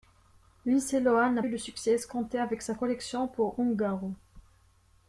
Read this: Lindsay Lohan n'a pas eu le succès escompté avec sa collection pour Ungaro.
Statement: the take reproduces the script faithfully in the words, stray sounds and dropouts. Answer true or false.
false